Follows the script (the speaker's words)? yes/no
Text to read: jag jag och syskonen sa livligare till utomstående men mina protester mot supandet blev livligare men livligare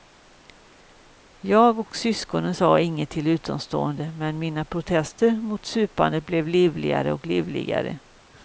no